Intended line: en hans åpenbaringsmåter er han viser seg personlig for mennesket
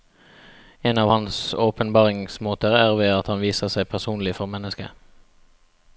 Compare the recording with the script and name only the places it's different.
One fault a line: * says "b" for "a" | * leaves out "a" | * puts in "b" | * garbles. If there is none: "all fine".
* puts in "av"
* puts in "ved at"